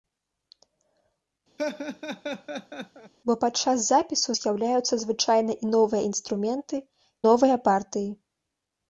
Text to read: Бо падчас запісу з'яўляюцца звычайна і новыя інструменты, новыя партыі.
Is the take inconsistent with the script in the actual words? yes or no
no